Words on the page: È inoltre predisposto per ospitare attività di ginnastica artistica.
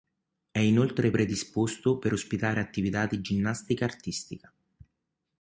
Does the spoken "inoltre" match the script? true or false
true